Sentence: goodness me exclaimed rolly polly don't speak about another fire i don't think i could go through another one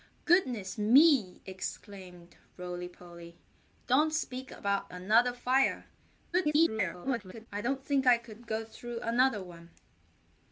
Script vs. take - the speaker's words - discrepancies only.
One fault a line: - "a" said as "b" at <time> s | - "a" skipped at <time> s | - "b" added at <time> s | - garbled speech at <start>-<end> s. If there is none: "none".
- garbled speech at 6.3-7.5 s